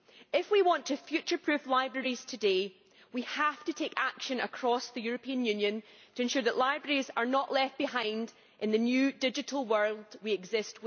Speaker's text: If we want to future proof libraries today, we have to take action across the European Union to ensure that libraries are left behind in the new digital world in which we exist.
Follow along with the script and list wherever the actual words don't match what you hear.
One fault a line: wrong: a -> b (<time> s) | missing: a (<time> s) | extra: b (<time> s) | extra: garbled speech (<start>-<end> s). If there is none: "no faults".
extra: not (7.2 s)